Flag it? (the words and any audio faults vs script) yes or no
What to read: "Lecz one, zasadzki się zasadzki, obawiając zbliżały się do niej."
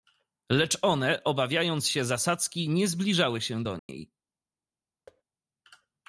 yes